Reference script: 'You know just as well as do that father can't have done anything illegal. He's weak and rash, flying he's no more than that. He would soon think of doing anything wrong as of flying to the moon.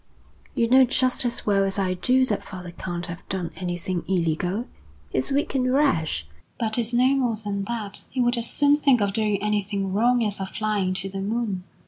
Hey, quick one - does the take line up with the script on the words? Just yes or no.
no